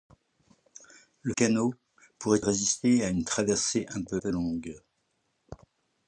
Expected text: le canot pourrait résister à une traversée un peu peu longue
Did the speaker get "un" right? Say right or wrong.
right